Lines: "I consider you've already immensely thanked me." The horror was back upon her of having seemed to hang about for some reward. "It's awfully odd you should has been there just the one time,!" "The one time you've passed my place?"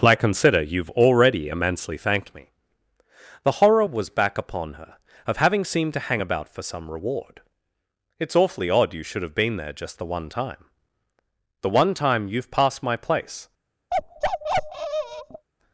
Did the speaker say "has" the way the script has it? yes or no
no